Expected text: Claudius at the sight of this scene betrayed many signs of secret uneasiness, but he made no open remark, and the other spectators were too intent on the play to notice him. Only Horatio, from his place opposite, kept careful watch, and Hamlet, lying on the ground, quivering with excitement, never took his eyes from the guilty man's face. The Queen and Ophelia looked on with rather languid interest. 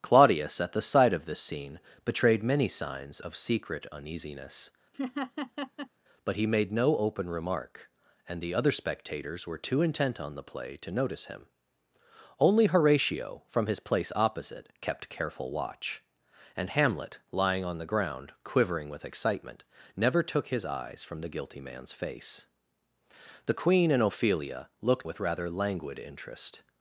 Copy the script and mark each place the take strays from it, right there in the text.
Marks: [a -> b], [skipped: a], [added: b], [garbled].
Claudius at the sight of this scene betrayed many signs of secret uneasiness, but he made no open remark, and the other spectators were too intent on the play to notice him. Only Horatio, from his place opposite, kept careful watch, and Hamlet, lying on the ground, quivering with excitement, never took his eyes from the guilty man's face. The Queen and Ophelia looked [skipped: on] with rather languid interest.